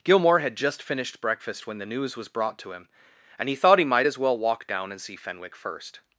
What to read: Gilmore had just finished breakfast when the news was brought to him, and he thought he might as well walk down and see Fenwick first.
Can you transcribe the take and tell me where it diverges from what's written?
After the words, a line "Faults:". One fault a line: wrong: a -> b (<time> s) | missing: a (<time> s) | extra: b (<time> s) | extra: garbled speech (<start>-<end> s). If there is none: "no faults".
Gilmore had just finished breakfast when the news was brought to him, and he thought he might as well walk down and see Fenwick first.
Faults:
no faults